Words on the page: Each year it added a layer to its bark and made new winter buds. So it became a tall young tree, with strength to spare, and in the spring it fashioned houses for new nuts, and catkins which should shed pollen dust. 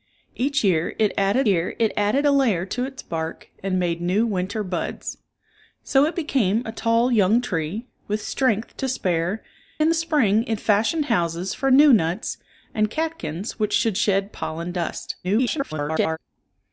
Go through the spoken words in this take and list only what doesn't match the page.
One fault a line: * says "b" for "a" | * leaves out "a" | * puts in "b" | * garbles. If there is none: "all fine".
* puts in "year it added"
* leaves out "and"
* garbles